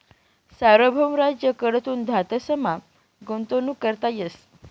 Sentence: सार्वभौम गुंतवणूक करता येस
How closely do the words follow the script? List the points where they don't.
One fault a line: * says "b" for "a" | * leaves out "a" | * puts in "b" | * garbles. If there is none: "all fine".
* puts in "राज्य कडथून धातसमा"